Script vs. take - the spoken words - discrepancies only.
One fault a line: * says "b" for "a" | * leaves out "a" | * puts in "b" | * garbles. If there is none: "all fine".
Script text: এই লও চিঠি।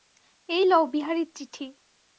* puts in "বিহারীর"